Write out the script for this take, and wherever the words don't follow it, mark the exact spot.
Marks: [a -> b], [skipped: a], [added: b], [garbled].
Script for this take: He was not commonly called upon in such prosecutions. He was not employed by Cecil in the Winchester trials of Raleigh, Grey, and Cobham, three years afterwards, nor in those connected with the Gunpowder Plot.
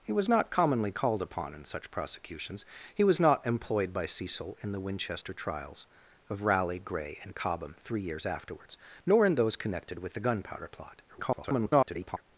He was not commonly called upon in such prosecutions. He was not employed by Cecil in the Winchester trials of Raleigh, Grey, and Cobham, three years afterwards, nor in those connected with the Gunpowder Plot. [garbled]